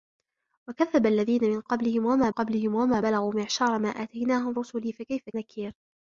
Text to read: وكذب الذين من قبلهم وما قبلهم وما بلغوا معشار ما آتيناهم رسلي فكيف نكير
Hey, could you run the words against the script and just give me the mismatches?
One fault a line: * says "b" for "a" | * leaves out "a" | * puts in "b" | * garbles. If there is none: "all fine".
all fine